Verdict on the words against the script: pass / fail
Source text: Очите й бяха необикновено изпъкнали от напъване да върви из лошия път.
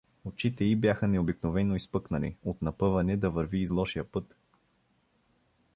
pass